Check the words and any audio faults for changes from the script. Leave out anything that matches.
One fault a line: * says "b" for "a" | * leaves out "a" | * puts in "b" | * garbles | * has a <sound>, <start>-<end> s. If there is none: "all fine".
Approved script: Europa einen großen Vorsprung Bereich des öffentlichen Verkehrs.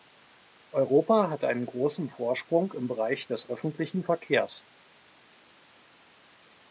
* puts in "hat"
* puts in "im"